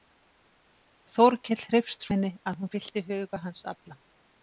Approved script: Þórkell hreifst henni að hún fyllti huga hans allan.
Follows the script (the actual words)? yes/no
yes